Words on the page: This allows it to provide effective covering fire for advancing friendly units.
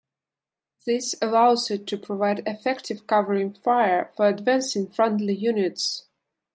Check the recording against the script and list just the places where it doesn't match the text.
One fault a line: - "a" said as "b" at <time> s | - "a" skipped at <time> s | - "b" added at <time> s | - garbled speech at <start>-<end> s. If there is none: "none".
none